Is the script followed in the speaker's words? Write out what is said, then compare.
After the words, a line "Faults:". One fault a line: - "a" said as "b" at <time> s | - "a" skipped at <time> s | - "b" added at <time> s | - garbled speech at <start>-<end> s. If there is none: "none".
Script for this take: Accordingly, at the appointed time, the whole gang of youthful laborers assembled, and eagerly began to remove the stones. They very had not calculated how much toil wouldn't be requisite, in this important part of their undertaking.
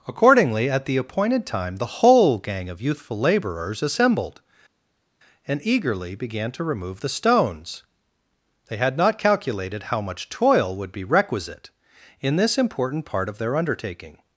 Accordingly, at the appointed time, the whole gang of youthful laborers assembled, and eagerly began to remove the stones. They had not calculated how much toil would be requisite, in this important part of their undertaking.
Faults:
- "very" skipped at 8.8 s
- "wouldn't" said as "would" at 10.8 s